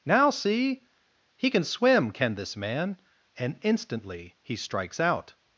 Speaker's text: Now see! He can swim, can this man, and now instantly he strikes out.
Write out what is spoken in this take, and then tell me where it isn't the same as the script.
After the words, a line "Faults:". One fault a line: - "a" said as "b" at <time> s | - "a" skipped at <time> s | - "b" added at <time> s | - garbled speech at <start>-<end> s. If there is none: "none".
Now see! He can swim, can this man, and instantly he strikes out.
Faults:
- "now" skipped at 3.6 s